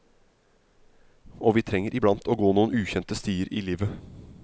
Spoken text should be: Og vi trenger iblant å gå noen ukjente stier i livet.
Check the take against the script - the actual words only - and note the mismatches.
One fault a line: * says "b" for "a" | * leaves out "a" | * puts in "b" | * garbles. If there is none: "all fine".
all fine